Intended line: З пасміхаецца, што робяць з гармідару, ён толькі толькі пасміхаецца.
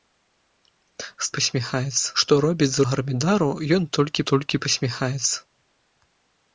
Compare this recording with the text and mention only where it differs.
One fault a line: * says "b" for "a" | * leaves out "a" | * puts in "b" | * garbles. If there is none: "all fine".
all fine